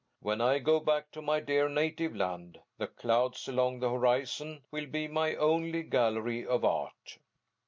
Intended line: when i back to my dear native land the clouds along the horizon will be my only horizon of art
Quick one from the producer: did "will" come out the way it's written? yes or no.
yes